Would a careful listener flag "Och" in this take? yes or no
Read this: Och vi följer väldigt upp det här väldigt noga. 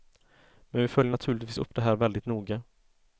yes